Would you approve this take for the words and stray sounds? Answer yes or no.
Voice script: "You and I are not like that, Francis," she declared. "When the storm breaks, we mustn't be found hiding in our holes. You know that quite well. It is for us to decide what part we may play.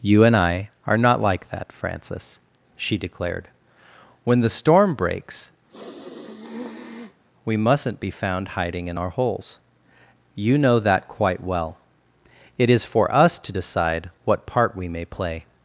no